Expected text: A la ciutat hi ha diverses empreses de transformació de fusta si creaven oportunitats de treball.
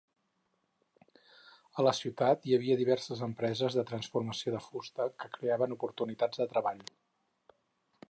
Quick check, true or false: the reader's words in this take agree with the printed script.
false